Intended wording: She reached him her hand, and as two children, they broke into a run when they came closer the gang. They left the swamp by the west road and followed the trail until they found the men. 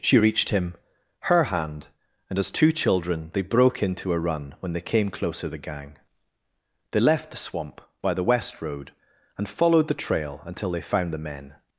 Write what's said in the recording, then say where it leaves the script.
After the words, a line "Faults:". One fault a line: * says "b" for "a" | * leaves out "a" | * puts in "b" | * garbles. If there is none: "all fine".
She reached him her hand, and as two children, they broke into a run when they came closer the gang. They left the swamp by the west road and followed the trail until they found the men.
Faults:
all fine